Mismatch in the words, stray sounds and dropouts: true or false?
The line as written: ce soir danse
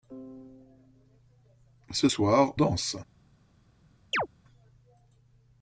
true